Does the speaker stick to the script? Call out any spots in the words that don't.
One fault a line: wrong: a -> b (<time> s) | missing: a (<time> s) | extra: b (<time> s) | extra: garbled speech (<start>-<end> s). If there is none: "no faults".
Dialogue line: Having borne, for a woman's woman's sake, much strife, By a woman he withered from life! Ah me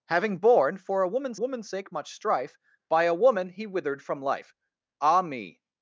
no faults